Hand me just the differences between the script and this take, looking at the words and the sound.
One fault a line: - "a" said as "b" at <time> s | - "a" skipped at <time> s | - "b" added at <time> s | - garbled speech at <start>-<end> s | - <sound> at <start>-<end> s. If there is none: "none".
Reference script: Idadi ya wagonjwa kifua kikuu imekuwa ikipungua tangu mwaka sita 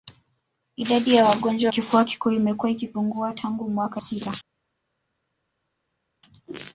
none